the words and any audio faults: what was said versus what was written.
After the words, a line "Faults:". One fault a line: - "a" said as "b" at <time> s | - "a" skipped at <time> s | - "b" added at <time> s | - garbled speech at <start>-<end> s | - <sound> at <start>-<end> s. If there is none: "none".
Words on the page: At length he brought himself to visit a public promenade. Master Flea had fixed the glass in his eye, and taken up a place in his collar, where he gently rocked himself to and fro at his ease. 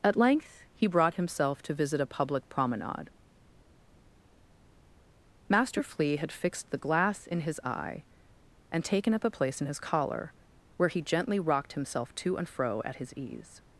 At length he brought himself to visit a public promenade. Master Flea had fixed the glass in his eye, and taken up a place in his collar, where he gently rocked himself to and fro at his ease.
Faults:
none